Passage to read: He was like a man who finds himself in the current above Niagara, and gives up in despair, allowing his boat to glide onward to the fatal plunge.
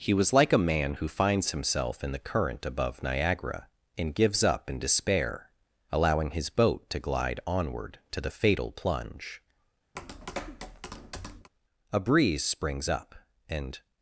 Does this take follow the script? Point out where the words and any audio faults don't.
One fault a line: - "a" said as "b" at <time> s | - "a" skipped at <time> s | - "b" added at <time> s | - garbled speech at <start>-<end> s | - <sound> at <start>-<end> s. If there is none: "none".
- tap at 10.0-11.5 s
- "A breeze springs up and" added at 11.9 s